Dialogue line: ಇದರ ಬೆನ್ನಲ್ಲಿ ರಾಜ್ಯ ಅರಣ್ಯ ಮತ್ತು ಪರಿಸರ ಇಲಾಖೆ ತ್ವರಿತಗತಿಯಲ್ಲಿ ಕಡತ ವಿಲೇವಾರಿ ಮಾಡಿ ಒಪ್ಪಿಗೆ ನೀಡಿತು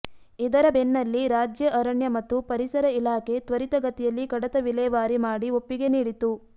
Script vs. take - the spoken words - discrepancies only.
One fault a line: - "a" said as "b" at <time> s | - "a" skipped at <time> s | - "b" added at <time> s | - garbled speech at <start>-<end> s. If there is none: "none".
none